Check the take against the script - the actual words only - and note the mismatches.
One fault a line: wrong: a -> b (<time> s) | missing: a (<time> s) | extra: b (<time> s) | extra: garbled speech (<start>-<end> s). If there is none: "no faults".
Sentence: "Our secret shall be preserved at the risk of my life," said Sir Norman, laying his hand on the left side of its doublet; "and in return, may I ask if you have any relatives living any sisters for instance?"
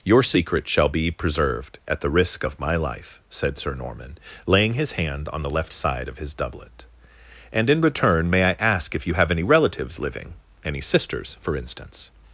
wrong: Our -> Your (0.0 s)
wrong: its -> his (6.2 s)